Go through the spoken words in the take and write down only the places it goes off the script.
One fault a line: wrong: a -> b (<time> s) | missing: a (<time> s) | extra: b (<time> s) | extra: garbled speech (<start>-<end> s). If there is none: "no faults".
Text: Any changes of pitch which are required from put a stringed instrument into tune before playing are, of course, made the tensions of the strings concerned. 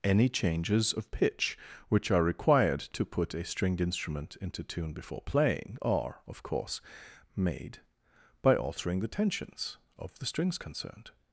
wrong: from -> to (2.9 s)
extra: by altering (8.4 s)